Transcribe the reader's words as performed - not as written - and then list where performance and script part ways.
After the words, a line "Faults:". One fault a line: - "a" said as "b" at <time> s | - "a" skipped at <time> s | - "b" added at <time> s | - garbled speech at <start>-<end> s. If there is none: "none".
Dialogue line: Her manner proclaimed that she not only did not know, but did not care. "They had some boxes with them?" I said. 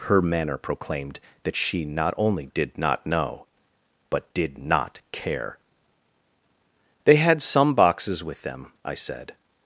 Her manner proclaimed that she not only did not know, but did not care. "They had some boxes with them?" I said.
Faults:
none